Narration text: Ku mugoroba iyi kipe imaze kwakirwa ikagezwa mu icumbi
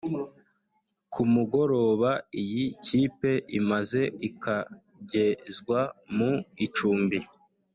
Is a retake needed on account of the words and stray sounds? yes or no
yes